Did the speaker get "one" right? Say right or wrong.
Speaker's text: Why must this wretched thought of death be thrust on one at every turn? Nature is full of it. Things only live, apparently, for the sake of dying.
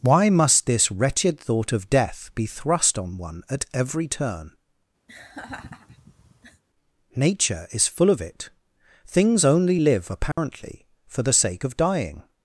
right